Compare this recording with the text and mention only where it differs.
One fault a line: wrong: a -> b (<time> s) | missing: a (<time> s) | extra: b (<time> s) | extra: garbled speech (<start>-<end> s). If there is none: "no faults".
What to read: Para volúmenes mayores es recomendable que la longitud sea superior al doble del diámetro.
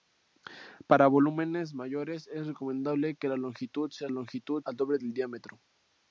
wrong: superior -> longitud (4.1 s)